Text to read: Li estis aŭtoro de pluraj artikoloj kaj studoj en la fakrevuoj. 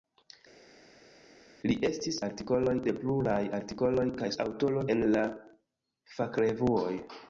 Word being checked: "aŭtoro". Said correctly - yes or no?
no